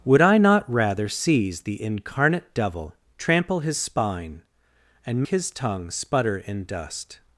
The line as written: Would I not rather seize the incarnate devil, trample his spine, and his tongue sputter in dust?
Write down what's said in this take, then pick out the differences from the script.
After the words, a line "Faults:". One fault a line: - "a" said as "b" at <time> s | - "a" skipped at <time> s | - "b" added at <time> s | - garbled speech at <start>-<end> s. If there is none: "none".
Would I not rather seize the incarnate devil, trample his spine, and his tongue sputter in dust?
Faults:
none